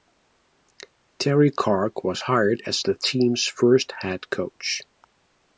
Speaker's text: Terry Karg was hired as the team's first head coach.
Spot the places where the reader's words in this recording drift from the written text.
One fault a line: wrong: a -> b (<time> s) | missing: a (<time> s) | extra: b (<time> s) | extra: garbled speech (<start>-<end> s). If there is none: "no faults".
no faults